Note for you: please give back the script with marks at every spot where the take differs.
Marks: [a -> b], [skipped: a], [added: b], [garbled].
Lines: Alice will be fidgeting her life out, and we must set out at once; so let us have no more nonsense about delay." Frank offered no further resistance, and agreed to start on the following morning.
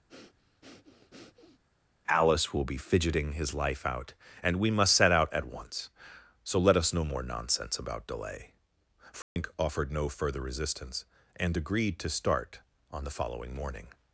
Alice will be fidgeting [her -> his] life out, and we must set out at once; so let us [skipped: have] no more nonsense about delay." Frank offered no further resistance, and agreed to start on the following morning.